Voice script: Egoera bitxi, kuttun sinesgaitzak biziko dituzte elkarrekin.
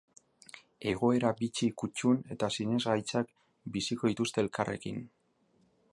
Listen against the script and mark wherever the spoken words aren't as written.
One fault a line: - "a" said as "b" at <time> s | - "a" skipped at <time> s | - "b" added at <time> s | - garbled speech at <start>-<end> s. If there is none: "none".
- "eta" added at 2.4 s